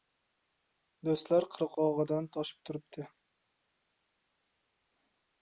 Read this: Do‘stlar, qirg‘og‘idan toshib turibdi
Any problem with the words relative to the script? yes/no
no